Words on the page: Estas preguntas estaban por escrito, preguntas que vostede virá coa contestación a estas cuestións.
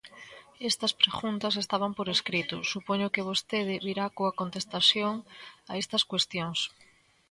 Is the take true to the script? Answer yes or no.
no